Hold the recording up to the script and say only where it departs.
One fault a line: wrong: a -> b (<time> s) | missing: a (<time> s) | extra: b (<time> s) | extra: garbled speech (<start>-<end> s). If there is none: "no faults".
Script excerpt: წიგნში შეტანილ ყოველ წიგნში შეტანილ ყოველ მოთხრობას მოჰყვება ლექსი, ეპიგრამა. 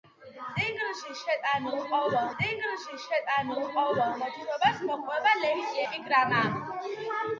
no faults